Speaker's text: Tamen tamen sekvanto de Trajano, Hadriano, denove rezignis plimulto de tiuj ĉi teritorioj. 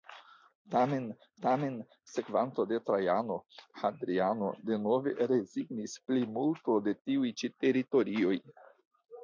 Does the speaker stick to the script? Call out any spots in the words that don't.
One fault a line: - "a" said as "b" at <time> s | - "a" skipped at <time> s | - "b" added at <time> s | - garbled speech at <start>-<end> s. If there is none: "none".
none